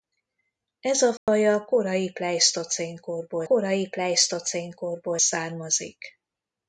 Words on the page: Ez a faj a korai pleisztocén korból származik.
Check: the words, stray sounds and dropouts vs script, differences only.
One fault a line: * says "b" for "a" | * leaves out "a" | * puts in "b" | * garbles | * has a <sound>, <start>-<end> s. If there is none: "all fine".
* has a dropout, 1.2-1.3 s
* puts in "korai pleisztocén korból"